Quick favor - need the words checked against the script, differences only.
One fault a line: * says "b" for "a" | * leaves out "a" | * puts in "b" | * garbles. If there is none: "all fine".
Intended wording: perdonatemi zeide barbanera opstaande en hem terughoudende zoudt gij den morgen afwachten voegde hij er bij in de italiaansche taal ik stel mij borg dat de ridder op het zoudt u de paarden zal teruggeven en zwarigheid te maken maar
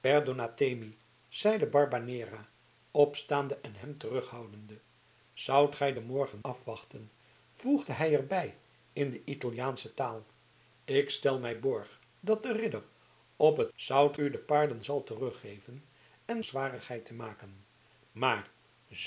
all fine